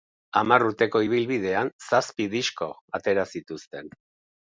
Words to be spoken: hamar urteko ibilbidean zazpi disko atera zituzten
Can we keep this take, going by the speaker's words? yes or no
yes